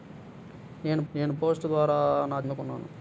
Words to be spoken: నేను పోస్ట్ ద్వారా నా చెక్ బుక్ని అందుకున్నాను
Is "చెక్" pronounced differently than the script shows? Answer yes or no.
yes